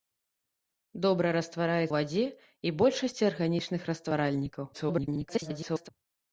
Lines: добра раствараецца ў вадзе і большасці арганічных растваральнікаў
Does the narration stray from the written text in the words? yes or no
yes